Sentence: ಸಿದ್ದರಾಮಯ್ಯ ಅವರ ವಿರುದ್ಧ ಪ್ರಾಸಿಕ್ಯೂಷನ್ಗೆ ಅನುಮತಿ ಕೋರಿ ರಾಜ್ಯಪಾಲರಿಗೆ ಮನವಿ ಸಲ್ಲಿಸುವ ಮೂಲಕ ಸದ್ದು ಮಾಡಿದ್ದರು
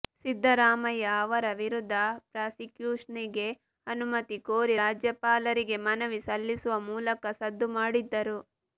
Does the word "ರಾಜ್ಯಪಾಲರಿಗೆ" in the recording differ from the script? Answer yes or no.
no